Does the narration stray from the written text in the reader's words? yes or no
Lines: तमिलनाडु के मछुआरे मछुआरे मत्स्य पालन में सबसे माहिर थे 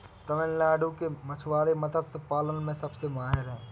yes